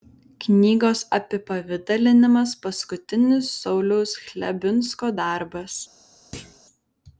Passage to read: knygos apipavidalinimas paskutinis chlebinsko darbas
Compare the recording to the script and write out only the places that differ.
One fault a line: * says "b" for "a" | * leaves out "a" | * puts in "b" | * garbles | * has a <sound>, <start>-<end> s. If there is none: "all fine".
* puts in "sauliaus"
* has a thud, 6.3-6.6 s